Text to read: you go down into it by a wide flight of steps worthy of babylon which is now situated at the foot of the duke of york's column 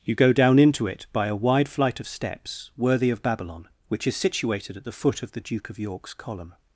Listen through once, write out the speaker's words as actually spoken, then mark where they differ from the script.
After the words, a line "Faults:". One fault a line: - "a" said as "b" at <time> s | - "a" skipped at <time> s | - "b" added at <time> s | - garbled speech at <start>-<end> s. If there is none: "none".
you go down into it by a wide flight of steps worthy of babylon which is situated at the foot of the duke of york's column
Faults:
- "now" skipped at 4.2 s